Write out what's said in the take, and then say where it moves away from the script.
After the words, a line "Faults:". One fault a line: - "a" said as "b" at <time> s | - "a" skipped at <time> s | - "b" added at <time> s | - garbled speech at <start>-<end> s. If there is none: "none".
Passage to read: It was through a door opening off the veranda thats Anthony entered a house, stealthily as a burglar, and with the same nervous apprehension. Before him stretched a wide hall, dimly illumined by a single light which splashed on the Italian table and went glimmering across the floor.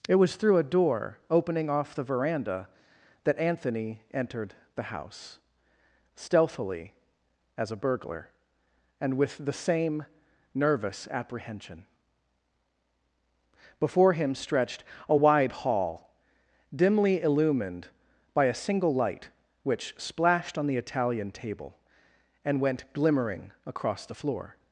It was through a door opening off the veranda that Anthony entered the house, stealthily as a burglar, and with the same nervous apprehension. Before him stretched a wide hall, dimly illumined by a single light which splashed on the Italian table and went glimmering across the floor.
Faults:
- "thats" said as "that" at 3.2 s
- "a" said as "the" at 4.8 s